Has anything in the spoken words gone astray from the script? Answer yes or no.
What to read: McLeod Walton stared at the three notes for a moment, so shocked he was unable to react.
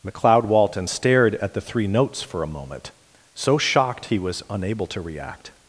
no